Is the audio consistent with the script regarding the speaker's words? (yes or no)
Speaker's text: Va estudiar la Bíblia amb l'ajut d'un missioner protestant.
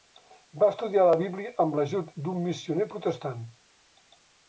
yes